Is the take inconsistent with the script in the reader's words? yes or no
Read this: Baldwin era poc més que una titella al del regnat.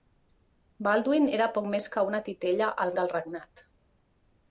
no